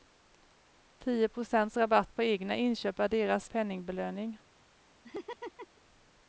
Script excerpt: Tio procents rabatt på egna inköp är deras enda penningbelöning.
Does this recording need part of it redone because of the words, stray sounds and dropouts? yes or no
yes